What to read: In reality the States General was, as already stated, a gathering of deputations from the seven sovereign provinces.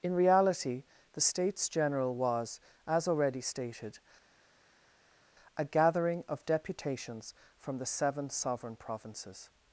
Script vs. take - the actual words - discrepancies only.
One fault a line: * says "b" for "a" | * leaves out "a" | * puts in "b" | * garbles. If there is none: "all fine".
all fine